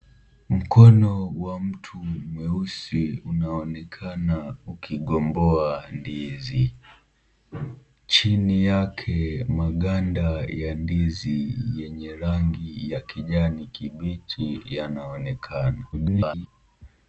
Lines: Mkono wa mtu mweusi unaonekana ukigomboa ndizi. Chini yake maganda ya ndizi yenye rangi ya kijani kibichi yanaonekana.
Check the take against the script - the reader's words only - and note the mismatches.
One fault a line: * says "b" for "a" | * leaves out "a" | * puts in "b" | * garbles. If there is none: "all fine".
* garbles